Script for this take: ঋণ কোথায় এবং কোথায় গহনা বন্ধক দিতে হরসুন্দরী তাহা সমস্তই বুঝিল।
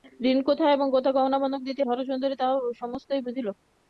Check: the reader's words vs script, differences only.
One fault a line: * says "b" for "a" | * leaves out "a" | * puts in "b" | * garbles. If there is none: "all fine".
all fine